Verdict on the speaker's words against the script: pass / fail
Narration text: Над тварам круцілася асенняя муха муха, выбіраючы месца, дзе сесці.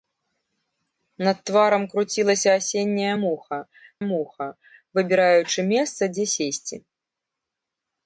pass